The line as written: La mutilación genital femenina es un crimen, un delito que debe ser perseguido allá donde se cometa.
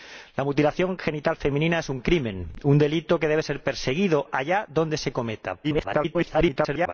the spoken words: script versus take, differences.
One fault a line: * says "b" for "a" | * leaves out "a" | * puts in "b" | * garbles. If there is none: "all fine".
* garbles